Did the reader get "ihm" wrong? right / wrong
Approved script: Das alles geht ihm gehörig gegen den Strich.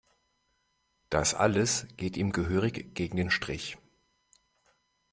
right